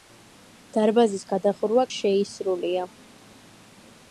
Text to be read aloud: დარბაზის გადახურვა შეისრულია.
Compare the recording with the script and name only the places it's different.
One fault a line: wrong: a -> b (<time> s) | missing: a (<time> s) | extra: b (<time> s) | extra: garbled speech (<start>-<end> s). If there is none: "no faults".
no faults